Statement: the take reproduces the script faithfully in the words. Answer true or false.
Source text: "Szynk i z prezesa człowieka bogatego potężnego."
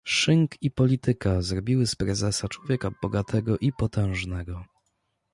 false